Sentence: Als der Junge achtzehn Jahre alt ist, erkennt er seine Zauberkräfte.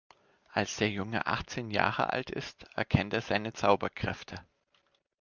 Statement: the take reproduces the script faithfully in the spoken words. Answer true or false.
true